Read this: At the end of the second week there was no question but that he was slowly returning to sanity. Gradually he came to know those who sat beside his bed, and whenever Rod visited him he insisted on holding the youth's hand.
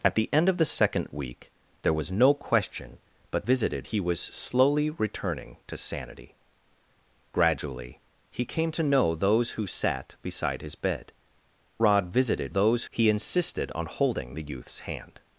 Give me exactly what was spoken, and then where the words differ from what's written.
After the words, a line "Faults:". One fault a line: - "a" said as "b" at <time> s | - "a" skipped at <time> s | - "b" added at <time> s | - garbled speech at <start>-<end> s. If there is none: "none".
At the end of the second week there was no question but visited he was slowly returning to sanity. Gradually he came to know those who sat beside his bed, Rod visited those he insisted on holding the youth's hand.
Faults:
- "that" said as "visited" at 3.4 s
- "and whenever" skipped at 11.1 s
- "him" said as "those" at 12.5 s